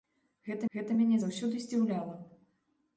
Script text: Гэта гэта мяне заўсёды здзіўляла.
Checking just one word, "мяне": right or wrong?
right